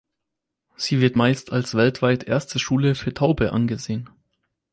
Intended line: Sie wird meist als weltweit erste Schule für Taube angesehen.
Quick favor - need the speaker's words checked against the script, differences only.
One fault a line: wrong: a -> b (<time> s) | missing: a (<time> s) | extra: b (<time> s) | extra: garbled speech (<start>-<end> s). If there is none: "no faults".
no faults